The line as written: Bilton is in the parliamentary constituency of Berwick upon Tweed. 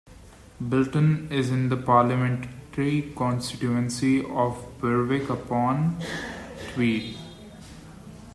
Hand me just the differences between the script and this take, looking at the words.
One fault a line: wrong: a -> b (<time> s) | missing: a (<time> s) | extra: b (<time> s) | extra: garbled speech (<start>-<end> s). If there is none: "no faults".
no faults